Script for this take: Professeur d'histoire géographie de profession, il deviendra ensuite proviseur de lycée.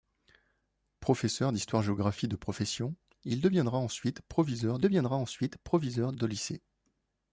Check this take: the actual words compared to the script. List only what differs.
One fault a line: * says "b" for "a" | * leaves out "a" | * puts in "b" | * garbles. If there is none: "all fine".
* puts in "deviendra ensuite proviseur"